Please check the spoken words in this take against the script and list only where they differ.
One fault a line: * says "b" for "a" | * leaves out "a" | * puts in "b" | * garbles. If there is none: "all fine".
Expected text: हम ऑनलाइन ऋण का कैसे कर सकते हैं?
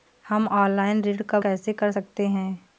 all fine